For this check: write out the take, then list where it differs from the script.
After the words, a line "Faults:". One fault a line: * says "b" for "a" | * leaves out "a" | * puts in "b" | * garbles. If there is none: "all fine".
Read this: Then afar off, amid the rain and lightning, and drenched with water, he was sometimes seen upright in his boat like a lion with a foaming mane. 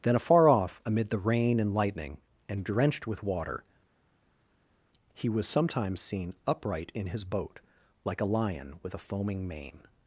Then afar off, amid the rain and lightning, and drenched with water, he was sometimes seen upright in his boat like a lion with a foaming mane.
Faults:
all fine